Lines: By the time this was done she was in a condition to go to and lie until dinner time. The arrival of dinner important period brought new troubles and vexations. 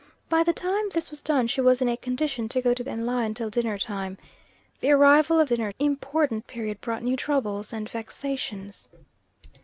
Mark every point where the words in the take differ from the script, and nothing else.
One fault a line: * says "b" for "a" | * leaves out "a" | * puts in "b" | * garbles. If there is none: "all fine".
all fine